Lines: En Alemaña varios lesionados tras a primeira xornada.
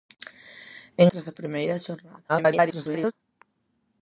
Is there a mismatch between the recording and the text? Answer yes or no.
yes